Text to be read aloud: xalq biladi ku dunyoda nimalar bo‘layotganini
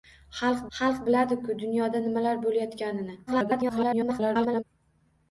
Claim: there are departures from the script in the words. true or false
true